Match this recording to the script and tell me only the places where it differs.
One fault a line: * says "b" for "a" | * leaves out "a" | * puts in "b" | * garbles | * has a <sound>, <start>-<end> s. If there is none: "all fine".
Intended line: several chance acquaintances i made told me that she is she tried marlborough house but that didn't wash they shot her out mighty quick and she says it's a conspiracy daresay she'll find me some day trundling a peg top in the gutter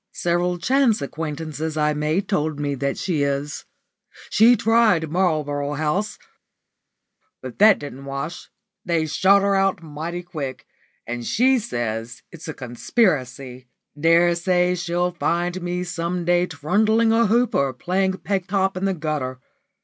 * puts in "hoop or playing"